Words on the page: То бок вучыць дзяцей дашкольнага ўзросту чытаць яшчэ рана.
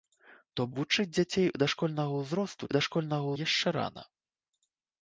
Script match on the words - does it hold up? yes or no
no